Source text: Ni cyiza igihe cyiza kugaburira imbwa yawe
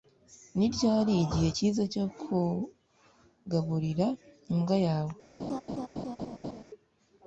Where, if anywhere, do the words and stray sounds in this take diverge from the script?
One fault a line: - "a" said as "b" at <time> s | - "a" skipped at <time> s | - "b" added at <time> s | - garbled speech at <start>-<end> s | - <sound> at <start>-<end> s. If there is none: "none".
- "cyiza" said as "ryari" at 0.8 s
- "cyo" added at 1.9 s
- laugh at 5.4-6.6 s